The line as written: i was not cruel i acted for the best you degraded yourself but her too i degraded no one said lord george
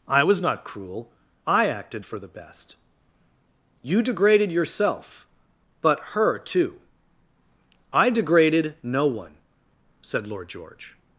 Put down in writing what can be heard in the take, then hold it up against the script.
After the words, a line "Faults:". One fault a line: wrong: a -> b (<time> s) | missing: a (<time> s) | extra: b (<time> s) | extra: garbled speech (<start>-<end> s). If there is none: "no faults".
i was not cruel i acted for the best you degraded yourself but her too i degraded no one said lord george
Faults:
no faults